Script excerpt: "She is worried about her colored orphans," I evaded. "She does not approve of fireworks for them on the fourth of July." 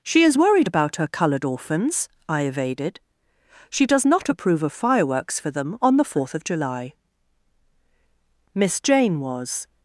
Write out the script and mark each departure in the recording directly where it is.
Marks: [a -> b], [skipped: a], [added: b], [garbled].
"She is worried about her colored orphans," I evaded. "She does not approve of fireworks for them on the fourth of July." [added: Miss Jane was]